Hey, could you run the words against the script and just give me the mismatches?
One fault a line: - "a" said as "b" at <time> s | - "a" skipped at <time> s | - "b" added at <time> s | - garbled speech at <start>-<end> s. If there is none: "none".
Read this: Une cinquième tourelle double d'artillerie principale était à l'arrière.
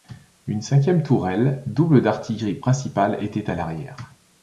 none